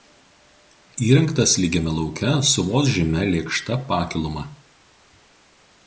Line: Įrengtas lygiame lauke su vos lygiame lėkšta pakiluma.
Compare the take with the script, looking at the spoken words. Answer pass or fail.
fail